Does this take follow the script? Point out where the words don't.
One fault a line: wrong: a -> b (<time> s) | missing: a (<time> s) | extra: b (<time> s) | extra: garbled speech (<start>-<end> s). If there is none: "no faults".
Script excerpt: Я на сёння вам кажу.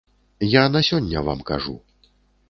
no faults